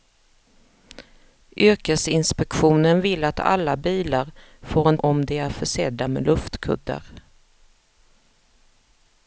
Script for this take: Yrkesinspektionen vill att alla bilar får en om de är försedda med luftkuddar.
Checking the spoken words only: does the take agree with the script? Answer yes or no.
yes